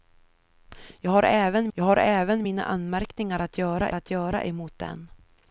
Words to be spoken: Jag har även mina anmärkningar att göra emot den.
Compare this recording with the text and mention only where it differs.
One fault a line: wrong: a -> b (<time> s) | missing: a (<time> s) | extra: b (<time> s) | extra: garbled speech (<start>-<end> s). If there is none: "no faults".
extra: jag har även (1.7 s)
extra: att göra (3.9 s)